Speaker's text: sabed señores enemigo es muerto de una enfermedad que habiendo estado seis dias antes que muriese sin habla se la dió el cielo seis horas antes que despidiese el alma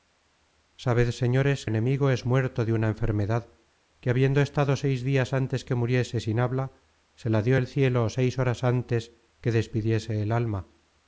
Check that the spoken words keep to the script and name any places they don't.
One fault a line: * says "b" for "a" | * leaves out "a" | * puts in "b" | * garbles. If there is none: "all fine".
all fine